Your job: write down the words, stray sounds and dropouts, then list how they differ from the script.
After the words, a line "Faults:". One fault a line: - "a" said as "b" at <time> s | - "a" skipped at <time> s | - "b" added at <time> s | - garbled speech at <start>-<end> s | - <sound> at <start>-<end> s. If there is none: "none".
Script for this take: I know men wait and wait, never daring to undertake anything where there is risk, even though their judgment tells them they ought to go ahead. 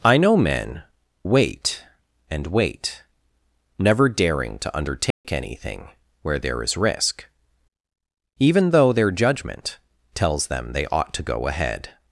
I know men wait and wait, never daring to undertake anything where there is risk, even though their judgment tells them they ought to go ahead.
Faults:
- dropout at 5.1-5.2 s